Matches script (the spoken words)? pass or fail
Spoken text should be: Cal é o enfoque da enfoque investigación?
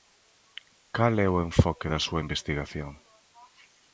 fail